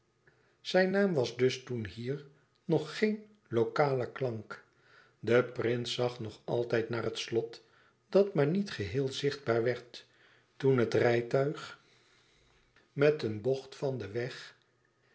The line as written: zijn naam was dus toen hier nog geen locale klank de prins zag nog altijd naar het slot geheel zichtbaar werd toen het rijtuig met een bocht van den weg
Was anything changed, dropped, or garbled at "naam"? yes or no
no